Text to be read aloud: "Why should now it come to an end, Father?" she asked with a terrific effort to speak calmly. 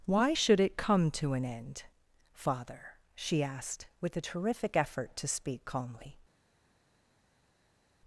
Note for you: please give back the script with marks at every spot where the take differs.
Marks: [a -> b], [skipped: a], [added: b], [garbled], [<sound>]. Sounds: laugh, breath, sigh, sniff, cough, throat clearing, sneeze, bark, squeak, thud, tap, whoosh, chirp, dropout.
"Why should [skipped: now] it come to an end, Father?" she asked with a terrific effort to speak calmly.